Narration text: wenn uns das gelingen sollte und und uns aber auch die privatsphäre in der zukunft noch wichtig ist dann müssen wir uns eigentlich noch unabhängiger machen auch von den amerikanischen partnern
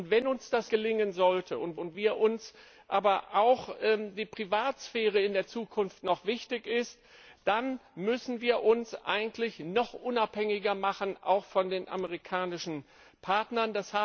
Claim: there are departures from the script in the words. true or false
false